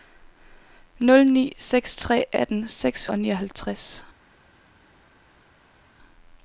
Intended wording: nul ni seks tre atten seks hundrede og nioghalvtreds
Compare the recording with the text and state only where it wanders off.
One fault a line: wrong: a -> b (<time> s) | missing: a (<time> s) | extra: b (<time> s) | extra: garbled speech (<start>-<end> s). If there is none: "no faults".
missing: hundrede (3.1 s)